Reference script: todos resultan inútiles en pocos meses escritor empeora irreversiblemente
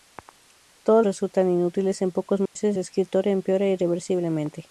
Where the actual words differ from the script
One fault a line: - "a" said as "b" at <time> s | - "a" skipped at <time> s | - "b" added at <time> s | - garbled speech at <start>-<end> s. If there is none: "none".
none